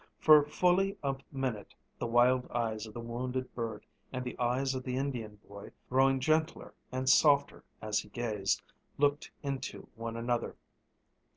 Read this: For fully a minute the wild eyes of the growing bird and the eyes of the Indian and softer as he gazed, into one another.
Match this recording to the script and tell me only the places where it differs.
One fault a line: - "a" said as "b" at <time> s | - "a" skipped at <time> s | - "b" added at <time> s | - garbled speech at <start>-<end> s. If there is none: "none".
- "growing" said as "wounded" at 3.0 s
- "boy growing gentler" added at 5.4 s
- "looked" added at 9.0 s